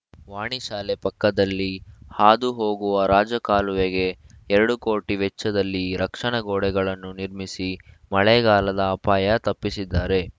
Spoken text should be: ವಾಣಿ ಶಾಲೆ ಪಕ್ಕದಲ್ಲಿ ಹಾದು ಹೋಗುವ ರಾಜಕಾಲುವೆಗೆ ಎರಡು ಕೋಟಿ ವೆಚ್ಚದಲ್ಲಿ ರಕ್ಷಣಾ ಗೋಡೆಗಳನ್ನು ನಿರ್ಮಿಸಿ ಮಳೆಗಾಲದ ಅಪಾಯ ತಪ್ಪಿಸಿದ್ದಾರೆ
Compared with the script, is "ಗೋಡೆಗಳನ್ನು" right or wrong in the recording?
right